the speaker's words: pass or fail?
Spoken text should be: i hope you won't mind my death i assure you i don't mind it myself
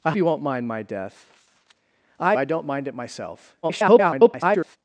fail